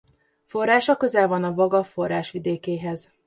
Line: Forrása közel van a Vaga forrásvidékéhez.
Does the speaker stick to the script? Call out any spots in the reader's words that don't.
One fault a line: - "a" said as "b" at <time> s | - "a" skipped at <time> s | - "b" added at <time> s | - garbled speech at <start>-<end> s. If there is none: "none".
none